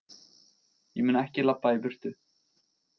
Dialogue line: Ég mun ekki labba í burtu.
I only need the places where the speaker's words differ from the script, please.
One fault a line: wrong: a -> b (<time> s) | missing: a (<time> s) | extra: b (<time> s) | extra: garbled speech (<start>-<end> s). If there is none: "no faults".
no faults